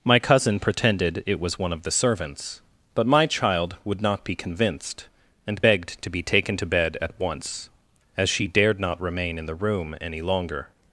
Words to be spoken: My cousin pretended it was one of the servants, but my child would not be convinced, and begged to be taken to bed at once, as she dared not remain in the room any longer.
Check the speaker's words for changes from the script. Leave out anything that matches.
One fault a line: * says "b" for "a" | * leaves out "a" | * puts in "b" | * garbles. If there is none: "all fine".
all fine